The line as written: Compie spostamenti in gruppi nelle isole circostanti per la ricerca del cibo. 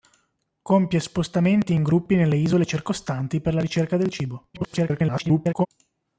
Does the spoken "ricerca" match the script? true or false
true